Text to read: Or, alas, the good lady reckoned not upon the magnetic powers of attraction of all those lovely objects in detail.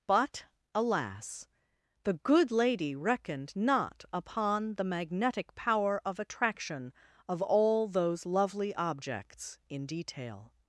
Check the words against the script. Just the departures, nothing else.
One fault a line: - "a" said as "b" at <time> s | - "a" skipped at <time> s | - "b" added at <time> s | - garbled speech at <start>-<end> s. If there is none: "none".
- "Or" said as "But" at 0.1 s
- "powers" said as "power" at 5.5 s